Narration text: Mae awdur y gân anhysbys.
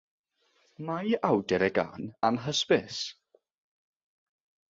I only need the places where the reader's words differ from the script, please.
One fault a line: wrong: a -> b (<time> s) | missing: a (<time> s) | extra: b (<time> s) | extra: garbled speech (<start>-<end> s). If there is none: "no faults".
no faults